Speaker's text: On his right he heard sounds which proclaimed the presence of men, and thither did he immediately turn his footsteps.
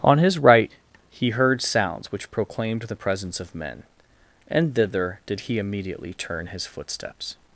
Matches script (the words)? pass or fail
pass